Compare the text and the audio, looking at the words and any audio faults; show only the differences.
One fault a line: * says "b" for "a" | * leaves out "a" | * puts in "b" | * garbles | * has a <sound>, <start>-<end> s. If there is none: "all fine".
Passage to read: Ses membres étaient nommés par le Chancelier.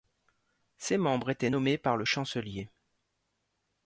all fine